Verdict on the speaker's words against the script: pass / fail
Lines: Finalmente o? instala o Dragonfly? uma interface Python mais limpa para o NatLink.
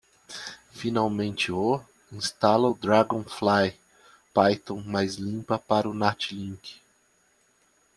fail